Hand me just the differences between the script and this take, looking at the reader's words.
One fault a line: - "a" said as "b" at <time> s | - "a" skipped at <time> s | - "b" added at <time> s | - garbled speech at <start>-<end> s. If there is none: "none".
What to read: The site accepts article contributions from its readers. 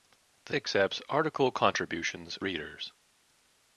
- "site" skipped at 0.6 s
- "from its" skipped at 2.4 s